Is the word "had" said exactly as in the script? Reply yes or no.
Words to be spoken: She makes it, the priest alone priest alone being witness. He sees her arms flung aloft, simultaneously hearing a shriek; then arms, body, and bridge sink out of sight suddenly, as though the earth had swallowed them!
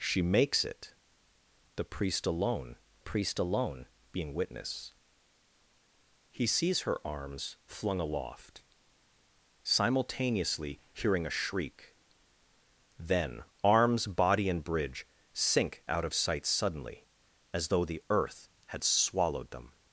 yes